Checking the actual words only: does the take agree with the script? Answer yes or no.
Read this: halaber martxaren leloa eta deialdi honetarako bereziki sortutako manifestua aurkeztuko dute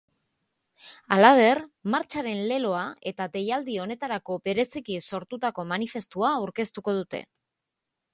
yes